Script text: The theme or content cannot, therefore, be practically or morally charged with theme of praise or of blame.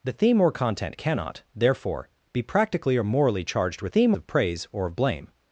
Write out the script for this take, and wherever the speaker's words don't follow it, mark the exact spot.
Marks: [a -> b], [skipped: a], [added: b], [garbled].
The theme or content cannot, therefore, be practically or morally charged with theme of praise or of blame.